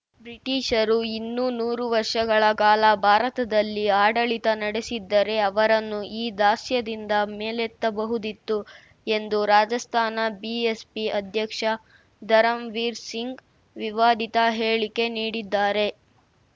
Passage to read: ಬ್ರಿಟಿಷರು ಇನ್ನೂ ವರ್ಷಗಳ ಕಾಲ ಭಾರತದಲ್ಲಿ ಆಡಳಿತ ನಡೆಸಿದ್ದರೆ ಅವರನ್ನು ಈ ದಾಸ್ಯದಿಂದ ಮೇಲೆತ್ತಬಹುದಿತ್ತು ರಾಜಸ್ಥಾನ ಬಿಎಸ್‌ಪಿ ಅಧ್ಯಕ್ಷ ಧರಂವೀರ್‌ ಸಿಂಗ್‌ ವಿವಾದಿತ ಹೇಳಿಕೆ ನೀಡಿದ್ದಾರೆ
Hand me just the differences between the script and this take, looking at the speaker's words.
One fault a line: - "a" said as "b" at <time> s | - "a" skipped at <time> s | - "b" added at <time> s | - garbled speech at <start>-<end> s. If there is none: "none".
- "ನೂರು" added at 1.6 s
- "ಎಂದು" added at 9.1 s